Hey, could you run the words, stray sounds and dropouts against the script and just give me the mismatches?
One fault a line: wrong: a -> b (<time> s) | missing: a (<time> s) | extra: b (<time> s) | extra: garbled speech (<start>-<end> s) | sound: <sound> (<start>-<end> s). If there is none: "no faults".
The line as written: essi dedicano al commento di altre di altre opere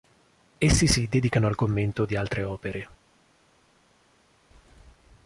extra: si (0.9 s)
missing: di altre (2.4 s)